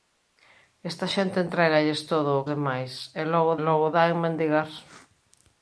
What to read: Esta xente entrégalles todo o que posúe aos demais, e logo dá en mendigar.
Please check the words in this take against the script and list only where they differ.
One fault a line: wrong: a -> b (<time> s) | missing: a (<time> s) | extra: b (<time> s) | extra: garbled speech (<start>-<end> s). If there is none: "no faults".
missing: que posúe aos (2.5 s)
extra: logo (3.7 s)